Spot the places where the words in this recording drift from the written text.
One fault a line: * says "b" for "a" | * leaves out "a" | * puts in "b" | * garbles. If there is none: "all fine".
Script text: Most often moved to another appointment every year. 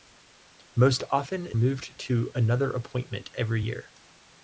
all fine